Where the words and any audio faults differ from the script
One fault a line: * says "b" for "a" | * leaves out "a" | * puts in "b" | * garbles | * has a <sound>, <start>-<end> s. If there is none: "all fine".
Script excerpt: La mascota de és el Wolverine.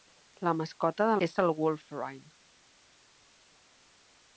all fine